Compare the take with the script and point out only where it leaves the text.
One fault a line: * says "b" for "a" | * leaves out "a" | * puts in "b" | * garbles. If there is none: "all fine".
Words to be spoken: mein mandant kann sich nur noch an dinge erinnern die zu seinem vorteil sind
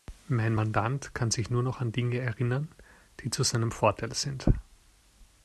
all fine